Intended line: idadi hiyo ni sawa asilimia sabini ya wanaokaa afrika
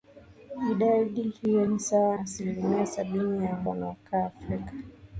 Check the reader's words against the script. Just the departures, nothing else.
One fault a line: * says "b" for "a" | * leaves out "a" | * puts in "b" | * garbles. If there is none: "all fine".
all fine